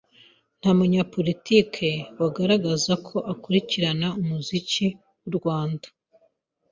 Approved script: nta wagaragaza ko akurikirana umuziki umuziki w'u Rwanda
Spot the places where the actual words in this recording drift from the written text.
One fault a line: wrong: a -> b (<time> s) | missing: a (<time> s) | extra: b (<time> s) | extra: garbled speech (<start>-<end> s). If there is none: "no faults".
extra: munyapolitiki (0.8 s)
missing: umuziki (4.8 s)